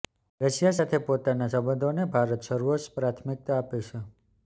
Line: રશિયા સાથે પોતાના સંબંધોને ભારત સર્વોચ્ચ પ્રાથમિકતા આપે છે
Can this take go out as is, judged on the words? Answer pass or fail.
pass